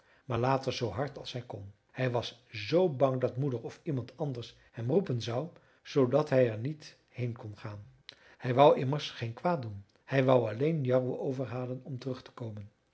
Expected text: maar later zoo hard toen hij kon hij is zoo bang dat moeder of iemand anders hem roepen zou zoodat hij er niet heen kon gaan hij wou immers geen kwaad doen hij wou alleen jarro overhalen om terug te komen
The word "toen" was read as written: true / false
false